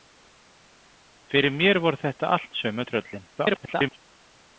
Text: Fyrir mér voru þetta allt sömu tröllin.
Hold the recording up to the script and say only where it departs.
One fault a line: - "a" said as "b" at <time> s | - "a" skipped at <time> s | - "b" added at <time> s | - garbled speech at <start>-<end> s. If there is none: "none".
- garbled speech at 3.4-4.0 s